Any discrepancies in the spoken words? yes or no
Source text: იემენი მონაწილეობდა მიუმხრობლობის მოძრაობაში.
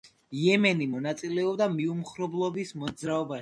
no